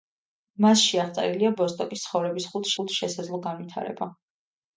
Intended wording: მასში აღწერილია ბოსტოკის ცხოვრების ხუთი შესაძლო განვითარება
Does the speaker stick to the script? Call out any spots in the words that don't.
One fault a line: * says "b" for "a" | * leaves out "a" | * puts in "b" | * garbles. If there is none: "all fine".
* puts in "ხუთი"